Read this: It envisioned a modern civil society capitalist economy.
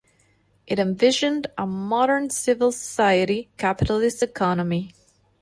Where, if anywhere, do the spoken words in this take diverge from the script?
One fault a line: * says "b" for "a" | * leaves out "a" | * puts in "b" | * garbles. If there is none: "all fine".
all fine